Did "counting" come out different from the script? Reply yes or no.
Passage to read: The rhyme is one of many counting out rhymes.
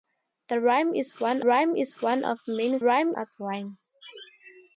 yes